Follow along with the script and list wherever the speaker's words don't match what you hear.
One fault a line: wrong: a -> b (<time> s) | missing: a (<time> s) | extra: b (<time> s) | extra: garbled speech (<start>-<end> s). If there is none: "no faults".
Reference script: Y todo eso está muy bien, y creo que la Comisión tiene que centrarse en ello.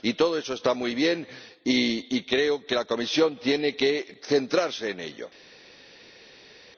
no faults